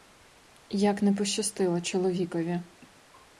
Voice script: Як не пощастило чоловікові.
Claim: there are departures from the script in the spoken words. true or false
false